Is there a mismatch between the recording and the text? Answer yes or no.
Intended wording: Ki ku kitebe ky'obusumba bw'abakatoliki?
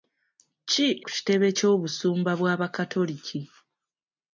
no